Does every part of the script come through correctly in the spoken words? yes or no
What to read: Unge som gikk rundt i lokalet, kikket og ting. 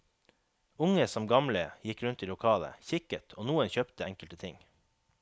no